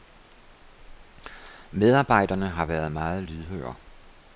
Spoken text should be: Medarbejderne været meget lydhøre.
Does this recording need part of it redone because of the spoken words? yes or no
yes